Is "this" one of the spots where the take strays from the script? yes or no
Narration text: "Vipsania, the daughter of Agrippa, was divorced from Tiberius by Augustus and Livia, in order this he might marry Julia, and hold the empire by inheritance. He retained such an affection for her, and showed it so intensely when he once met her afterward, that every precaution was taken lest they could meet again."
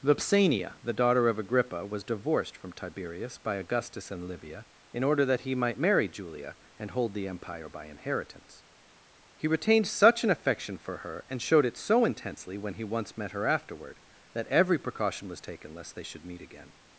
yes